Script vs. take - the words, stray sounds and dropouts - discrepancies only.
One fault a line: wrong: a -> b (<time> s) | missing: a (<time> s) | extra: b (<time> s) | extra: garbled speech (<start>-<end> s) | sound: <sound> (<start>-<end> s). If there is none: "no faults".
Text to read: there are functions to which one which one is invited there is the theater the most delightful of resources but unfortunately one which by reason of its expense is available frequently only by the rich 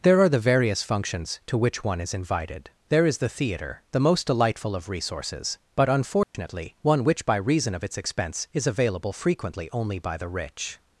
extra: the various (0.3 s)
missing: which one (2.0 s)
sound: dropout (6.2-6.3 s)